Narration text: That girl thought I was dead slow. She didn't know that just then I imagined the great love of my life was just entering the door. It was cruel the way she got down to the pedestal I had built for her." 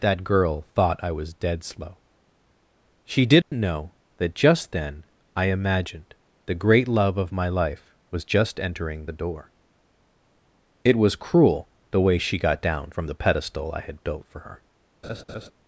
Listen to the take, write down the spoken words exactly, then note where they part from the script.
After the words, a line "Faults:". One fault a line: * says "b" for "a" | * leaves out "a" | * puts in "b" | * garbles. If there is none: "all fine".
That girl thought I was dead slow. She didn't know that just then I imagined the great love of my life was just entering the door. It was cruel the way she got down from the pedestal I had built for her."
Faults:
* says "from" for "to"